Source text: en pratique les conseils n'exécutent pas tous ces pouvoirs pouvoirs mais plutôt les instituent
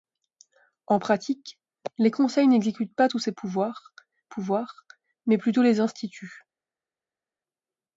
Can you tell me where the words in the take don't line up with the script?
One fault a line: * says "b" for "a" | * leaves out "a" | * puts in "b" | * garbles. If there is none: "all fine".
all fine